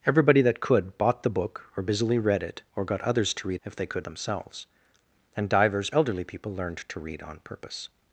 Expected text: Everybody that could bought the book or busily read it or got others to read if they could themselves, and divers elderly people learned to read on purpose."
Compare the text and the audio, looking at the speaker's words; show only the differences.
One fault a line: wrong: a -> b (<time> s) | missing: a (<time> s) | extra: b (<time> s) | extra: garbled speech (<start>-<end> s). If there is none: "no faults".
no faults